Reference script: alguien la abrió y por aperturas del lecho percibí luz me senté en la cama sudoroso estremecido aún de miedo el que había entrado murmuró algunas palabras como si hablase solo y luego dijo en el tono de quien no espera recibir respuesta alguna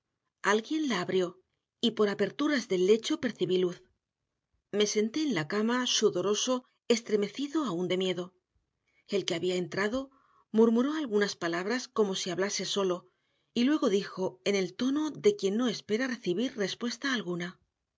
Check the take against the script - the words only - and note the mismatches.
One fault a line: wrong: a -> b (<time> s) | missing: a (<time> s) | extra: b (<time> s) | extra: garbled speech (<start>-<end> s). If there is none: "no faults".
no faults